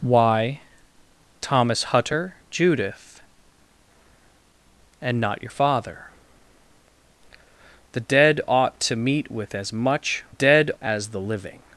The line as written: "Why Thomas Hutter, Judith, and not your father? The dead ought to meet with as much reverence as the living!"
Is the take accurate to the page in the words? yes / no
no